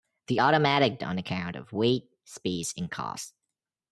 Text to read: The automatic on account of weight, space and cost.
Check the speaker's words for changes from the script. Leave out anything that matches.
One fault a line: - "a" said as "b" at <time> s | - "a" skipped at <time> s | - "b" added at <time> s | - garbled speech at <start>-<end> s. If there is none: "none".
none